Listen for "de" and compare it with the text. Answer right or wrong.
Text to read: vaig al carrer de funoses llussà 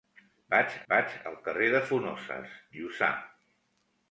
right